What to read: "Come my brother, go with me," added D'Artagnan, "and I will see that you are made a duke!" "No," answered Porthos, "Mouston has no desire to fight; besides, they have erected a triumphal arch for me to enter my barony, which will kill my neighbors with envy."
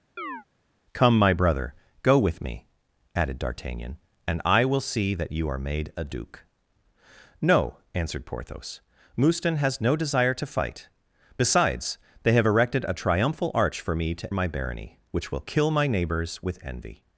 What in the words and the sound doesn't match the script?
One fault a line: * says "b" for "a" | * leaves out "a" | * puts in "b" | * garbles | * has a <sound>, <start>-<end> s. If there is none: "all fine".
* has a chirp, 0.2-0.4 s
* leaves out "enter"